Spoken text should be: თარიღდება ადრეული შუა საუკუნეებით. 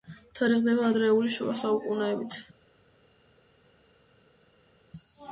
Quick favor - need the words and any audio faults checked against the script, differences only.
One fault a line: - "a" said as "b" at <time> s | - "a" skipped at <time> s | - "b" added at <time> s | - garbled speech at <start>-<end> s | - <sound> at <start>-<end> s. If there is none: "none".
none